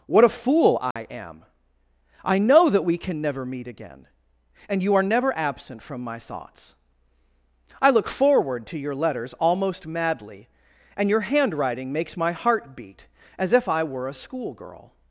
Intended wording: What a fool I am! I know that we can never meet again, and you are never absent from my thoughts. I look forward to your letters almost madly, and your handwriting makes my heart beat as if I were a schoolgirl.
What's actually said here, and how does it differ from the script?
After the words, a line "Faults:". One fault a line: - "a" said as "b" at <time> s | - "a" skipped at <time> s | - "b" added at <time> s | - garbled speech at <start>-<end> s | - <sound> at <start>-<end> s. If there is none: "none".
What a fool I am! I know that we can never meet again, and you are never absent from my thoughts. I look forward to your letters almost madly, and your handwriting makes my heart beat as if I were a schoolgirl.
Faults:
- dropout at 0.9-1.0 s